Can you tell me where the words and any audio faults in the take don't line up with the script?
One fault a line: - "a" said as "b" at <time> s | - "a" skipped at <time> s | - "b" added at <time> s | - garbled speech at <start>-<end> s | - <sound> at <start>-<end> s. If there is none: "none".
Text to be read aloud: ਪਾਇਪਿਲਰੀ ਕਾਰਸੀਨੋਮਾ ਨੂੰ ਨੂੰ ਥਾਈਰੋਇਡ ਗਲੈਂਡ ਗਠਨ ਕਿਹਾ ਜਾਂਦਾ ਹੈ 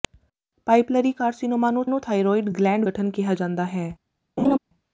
- laugh at 4.4-4.6 s